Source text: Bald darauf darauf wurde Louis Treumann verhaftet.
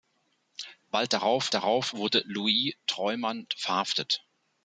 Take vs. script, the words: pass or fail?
pass